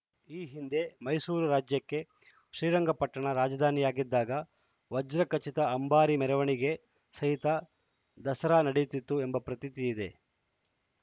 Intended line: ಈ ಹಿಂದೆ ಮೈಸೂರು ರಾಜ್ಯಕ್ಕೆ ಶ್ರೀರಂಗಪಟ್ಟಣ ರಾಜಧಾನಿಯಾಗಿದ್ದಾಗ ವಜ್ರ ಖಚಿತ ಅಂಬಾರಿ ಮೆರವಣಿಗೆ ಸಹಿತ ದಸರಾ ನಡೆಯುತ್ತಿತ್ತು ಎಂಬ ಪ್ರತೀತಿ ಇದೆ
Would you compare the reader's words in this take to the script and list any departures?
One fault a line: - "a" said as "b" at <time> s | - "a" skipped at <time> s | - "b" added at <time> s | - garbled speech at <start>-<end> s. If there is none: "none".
none